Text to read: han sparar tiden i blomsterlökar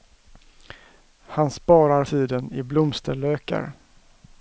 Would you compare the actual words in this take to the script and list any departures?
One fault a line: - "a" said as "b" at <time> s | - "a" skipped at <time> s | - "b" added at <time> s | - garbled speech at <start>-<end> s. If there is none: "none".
none